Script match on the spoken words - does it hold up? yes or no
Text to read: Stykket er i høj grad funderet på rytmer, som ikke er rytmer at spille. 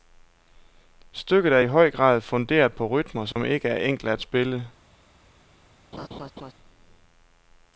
no